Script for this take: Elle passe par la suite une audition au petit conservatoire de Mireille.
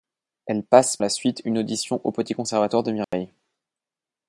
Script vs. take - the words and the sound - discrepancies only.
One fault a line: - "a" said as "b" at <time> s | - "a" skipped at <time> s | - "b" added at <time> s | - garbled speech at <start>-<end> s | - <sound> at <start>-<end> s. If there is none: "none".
- "par" skipped at 1.0 s
- dropout at 3.0-3.1 s